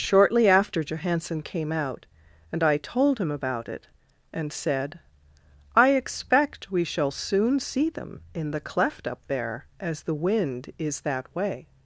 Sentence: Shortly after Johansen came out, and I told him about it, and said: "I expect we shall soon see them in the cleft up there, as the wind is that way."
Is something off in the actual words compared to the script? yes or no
no